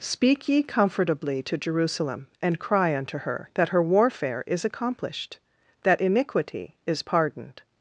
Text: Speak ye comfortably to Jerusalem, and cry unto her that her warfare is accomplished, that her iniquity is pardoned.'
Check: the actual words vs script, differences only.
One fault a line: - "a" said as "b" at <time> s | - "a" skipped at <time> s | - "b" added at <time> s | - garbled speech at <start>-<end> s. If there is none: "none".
- "her" skipped at 6.0 s